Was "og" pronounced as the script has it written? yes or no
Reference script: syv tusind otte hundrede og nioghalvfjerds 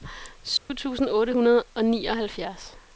yes